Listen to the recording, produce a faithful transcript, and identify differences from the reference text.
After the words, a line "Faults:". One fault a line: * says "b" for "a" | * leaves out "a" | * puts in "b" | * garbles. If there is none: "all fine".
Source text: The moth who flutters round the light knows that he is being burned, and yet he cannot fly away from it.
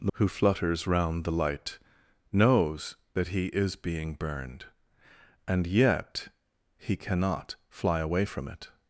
The who flutters round the light knows that he is being burned, and yet he cannot fly away from it.
Faults:
* leaves out "moth"